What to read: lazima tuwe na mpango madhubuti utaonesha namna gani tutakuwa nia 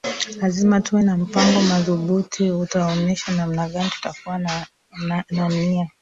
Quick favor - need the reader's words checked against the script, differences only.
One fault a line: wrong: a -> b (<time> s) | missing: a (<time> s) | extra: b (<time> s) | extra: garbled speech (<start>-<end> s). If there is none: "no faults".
extra: na (4.4 s)